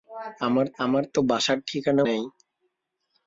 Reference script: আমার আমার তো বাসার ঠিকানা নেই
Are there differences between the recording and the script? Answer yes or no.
no